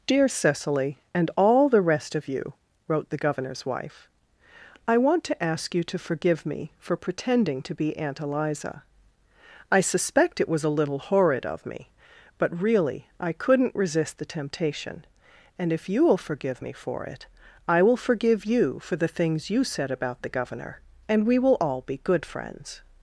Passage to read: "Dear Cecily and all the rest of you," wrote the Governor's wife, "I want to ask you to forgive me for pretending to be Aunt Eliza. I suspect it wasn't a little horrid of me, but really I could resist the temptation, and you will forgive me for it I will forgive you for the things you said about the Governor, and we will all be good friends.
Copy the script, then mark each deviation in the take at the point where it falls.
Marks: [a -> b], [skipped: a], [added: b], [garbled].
"Dear Cecily and all the rest of you," wrote the Governor's wife, "I want to ask you to forgive me for pretending to be Aunt Eliza. I suspect it [wasn't -> was] a little horrid of me, but really I [could -> couldn't] resist the temptation, and [added: if] you will forgive me for it I will forgive you for the things you said about the Governor, and we will all be good friends.